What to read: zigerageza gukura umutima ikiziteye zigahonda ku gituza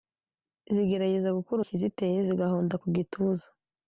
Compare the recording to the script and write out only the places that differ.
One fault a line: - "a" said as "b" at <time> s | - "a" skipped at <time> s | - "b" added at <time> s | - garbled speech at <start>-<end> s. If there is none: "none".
- "umutima" skipped at 1.6 s